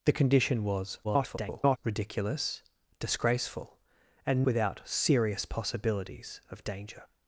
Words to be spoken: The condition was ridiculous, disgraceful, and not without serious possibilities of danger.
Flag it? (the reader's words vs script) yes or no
yes